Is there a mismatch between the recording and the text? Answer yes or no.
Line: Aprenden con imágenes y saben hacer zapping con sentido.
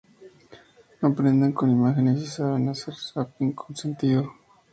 no